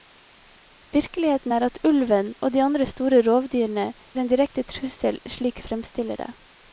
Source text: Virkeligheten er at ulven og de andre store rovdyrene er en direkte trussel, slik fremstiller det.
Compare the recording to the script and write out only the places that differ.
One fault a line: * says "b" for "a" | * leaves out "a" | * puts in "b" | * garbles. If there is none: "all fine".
all fine